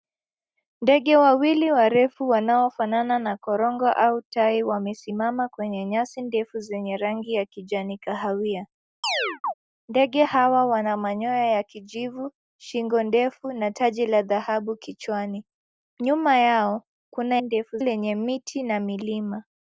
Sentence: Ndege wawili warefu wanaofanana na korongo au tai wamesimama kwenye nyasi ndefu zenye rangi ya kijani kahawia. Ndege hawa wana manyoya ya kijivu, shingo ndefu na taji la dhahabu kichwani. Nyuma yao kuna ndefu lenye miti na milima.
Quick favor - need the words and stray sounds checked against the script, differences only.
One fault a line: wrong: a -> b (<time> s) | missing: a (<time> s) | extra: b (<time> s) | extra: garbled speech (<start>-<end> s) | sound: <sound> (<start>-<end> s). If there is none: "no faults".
sound: chirp (9.0-9.5 s)